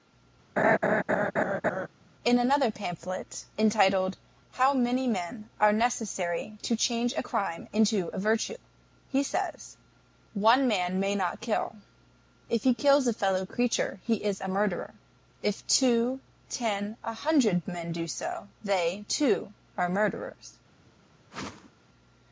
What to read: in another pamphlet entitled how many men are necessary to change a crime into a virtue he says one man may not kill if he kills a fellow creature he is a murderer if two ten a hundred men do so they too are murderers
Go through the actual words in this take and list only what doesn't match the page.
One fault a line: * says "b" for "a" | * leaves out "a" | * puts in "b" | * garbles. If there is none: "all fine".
all fine